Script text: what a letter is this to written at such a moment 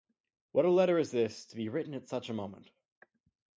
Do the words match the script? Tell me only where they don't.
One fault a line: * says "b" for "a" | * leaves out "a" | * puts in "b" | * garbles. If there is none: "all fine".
* puts in "be"